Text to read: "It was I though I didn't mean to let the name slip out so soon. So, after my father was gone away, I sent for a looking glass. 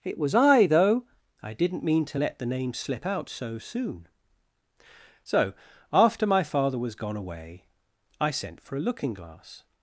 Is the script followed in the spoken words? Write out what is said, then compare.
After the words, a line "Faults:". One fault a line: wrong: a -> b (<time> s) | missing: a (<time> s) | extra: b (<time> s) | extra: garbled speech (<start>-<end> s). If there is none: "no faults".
"It was I though I didn't mean to let the name slip out so soon. So, after my father was gone away, I sent for a looking glass.
Faults:
no faults